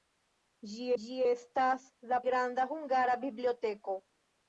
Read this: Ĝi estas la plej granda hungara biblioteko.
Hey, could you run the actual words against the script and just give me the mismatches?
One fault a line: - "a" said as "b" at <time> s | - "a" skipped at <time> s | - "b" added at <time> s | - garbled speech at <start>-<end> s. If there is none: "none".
- "ĝi" added at 1.0 s
- "plej" skipped at 2.2 s